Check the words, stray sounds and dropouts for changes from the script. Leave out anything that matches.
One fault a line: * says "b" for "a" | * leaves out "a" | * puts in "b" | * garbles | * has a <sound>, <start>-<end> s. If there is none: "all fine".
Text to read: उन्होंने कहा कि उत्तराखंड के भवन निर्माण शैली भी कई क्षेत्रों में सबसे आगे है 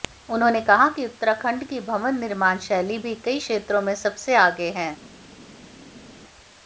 * says "की" for "के"